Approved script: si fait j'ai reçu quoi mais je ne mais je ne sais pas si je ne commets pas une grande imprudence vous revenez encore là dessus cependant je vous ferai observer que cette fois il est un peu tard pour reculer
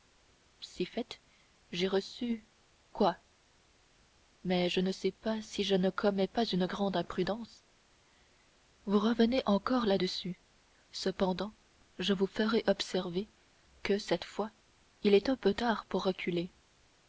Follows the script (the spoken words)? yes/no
no